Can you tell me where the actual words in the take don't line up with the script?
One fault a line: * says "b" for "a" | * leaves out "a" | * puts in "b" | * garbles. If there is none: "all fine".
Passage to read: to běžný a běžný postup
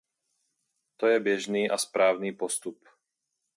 * puts in "je"
* says "správný" for "běžný"